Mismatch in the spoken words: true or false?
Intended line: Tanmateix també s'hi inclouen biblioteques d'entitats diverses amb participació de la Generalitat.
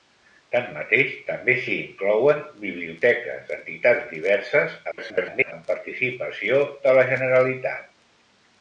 true